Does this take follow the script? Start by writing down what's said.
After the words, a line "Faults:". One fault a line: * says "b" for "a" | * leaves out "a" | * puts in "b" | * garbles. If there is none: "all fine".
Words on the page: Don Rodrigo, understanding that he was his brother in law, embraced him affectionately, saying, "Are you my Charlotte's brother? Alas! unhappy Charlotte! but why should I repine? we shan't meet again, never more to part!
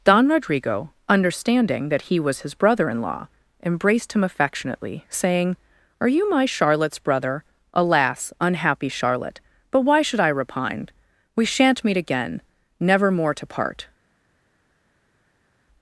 Don Rodrigo, understanding that he was his brother in law, embraced him affectionately, saying, "Are you my Charlotte's brother? Alas! unhappy Charlotte! but why should I repine? we shan't meet again, never more to part!
Faults:
all fine